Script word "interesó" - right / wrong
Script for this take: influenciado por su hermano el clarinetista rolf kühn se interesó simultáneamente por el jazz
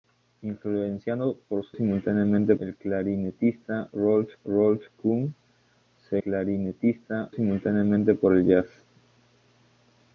wrong